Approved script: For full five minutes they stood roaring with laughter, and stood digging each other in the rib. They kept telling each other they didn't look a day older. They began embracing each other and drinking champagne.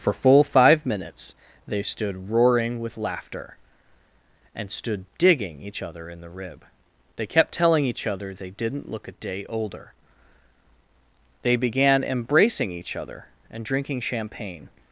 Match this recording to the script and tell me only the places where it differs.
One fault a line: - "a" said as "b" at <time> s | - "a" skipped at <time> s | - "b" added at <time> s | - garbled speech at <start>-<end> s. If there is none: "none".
none